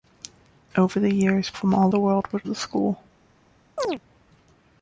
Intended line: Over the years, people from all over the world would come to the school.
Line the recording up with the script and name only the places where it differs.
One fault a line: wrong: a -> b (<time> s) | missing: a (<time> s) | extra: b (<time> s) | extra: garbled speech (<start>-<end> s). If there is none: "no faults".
missing: people (1.5 s)
missing: over (1.9 s)
missing: come to (2.5 s)